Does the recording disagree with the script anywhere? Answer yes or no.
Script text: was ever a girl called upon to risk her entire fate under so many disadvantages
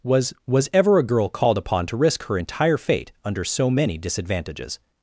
yes